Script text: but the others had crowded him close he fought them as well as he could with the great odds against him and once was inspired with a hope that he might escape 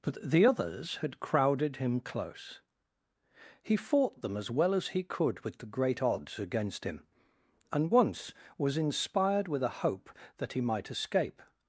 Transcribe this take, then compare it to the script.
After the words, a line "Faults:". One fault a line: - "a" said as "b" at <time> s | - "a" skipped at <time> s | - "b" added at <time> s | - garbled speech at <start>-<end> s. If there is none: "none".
but the others had crowded him close he fought them as well as he could with the great odds against him and once was inspired with a hope that he might escape
Faults:
none